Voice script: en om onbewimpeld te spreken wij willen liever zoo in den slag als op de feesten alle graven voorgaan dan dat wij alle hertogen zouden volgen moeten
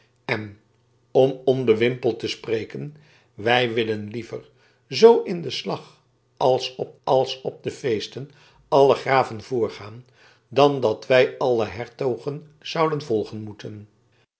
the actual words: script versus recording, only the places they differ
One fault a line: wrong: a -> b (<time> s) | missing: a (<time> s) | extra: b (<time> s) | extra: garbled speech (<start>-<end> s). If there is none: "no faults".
extra: als op (7.0 s)